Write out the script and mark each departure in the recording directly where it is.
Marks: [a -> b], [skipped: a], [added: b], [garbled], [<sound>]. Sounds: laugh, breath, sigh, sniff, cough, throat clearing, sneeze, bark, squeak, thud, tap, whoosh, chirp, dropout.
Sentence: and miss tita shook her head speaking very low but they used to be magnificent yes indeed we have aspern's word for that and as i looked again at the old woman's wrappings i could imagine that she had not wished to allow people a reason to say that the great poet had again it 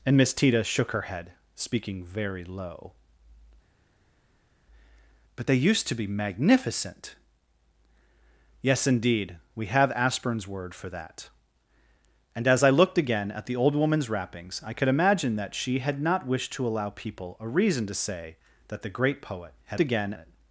and miss tita shook her head speaking very low but they used to be magnificent yes indeed we have aspern's word for that and as i looked again at the old woman's wrappings i could imagine that she had not wished to allow people a reason to say that the great poet had again it